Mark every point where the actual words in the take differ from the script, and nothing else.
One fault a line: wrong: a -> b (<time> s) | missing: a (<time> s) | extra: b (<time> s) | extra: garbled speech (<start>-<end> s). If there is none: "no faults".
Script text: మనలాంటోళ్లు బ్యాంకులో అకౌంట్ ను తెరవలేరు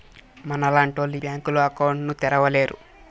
no faults